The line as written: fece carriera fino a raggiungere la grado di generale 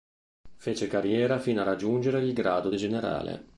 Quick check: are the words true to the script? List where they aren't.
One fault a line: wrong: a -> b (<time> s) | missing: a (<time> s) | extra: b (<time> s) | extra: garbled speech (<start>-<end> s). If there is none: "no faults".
wrong: la -> il (2.2 s)